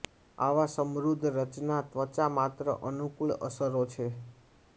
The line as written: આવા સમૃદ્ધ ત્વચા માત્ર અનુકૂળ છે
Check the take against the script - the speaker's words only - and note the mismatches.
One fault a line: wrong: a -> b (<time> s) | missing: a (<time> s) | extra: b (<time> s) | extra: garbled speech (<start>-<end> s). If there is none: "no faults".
extra: રચના (1.4 s)
extra: અસરો (3.4 s)